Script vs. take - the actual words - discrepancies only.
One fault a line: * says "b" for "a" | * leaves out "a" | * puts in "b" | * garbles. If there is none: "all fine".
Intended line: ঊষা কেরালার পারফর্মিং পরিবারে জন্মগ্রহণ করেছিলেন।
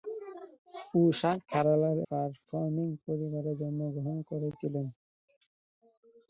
all fine